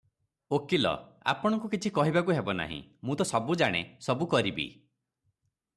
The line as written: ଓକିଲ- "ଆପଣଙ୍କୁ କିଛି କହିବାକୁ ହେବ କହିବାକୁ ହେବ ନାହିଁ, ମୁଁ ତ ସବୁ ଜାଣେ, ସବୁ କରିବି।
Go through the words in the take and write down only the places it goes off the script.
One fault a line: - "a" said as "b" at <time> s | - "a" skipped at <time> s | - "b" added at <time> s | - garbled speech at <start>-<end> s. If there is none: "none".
- "କହିବାକୁ ହେବ" skipped at 2.5 s